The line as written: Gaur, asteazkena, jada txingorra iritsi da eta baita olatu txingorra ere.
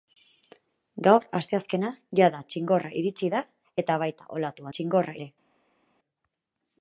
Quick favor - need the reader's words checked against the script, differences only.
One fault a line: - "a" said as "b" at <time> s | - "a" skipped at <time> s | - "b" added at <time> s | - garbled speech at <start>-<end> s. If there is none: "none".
none